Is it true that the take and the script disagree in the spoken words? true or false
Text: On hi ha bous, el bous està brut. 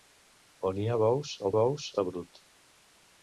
false